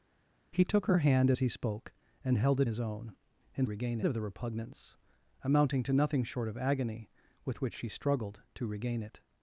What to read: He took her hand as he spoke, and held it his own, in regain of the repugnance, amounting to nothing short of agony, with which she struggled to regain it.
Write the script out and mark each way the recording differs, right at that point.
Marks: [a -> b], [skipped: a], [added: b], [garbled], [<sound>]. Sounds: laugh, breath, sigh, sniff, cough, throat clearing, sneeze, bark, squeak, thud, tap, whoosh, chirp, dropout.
He took her hand as he spoke, and held it his own, in regain of the repugnance, amounting to nothing short of agony, with which she struggled to regain it.